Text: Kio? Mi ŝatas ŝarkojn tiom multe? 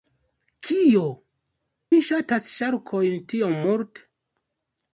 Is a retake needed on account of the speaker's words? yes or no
no